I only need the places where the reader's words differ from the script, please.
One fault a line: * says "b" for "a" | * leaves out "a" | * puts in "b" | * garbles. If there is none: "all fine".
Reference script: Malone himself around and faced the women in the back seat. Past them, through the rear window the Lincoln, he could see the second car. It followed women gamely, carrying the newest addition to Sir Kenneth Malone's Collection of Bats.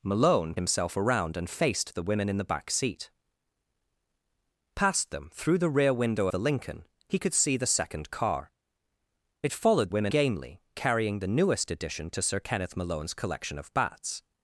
all fine